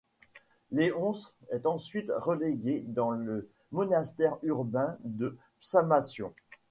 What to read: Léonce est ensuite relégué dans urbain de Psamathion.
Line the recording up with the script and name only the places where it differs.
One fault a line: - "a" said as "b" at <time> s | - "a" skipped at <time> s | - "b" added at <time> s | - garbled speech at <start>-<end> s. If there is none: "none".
- "le monastère" added at 3.1 s